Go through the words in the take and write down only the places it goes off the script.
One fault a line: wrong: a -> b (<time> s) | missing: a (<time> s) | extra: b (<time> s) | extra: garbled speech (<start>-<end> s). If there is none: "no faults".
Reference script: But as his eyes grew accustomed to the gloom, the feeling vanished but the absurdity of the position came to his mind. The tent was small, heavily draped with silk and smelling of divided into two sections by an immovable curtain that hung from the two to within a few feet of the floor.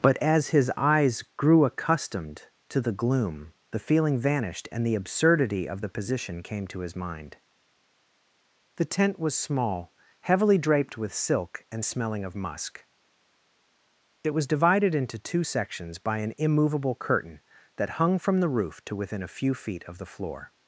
wrong: but -> and (4.7 s)
extra: musk It was (12.4 s)
wrong: two -> roof (18.5 s)